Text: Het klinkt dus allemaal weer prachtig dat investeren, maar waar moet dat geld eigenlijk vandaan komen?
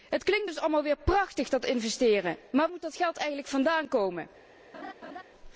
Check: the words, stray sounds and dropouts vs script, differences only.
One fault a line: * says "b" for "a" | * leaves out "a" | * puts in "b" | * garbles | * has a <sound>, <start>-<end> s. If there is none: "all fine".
* leaves out "waar"
* has a laugh, 4.7-5.2 s